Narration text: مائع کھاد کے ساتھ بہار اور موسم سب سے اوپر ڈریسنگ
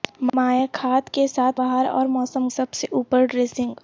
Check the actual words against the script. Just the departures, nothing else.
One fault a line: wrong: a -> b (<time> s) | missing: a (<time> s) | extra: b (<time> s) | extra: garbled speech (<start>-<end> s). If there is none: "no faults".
no faults